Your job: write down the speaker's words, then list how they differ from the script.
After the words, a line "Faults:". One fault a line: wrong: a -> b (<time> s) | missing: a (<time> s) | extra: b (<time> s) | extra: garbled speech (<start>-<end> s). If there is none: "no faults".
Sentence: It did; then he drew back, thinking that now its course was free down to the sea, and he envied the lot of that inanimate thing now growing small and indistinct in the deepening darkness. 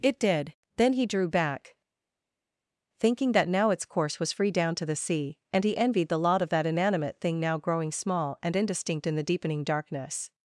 It did; then he drew back, thinking that now its course was free down to the sea, and he envied the lot of that inanimate thing now growing small and indistinct in the deepening darkness.
Faults:
no faults